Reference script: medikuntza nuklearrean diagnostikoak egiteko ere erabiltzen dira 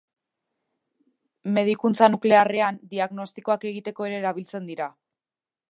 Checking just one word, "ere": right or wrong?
right